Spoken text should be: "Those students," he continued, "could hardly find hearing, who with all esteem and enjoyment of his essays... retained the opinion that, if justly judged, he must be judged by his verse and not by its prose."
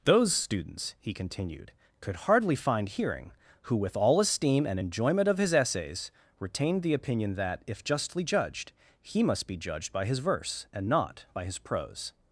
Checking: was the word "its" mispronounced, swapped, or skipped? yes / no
yes